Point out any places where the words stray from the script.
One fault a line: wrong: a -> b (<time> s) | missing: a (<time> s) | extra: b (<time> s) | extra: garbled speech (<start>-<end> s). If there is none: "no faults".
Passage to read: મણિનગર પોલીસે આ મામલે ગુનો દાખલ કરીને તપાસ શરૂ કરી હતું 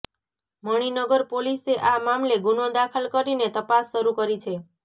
wrong: હતું -> છે (4.4 s)